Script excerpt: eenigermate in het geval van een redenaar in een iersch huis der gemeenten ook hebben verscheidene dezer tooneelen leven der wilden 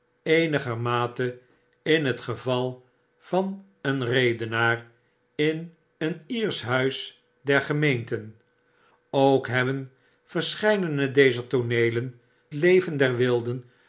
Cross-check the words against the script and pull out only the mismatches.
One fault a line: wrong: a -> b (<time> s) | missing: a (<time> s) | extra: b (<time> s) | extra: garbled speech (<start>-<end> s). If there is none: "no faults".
no faults